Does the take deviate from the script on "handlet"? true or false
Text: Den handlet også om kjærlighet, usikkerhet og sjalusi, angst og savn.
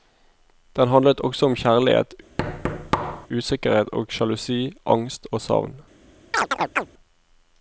false